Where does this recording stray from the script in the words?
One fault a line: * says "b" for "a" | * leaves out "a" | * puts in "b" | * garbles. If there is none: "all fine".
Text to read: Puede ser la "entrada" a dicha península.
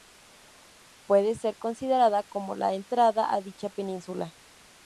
* puts in "considerada como"